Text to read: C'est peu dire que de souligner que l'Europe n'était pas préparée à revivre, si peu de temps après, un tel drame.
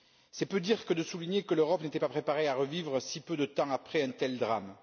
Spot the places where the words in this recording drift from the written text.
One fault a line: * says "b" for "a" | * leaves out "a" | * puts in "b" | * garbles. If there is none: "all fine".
all fine